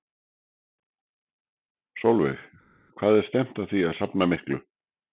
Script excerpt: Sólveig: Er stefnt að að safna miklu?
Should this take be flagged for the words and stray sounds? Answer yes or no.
yes